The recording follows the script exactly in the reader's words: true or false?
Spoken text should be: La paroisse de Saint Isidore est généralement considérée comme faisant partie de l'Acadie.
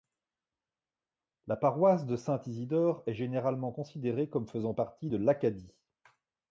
true